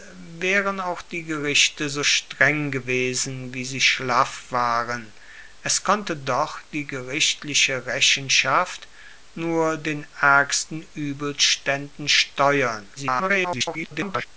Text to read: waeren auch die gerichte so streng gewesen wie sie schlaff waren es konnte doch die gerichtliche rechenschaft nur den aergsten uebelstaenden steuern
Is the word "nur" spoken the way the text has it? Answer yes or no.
yes